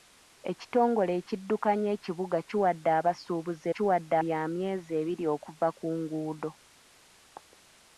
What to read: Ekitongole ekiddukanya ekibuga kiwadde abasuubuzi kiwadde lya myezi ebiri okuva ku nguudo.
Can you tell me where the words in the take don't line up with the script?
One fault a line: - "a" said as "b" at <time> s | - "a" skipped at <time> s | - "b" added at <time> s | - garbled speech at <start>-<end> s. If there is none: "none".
none